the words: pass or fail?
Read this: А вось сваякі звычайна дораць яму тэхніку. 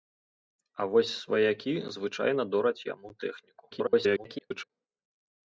fail